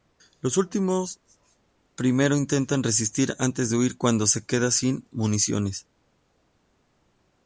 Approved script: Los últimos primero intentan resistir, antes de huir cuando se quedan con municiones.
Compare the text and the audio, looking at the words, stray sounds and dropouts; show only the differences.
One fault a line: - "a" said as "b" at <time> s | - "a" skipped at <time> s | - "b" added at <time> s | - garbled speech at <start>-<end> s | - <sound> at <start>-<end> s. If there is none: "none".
- "con" said as "sin" at 4.7 s